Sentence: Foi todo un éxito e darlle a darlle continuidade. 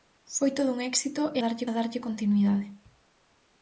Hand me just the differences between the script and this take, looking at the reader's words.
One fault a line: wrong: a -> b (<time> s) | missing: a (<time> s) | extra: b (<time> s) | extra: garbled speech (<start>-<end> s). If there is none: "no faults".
no faults